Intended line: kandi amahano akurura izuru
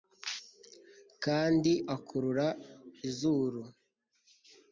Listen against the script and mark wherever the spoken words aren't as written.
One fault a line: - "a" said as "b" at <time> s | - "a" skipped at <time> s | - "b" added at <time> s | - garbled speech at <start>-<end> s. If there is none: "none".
- "amahano" skipped at 1.7 s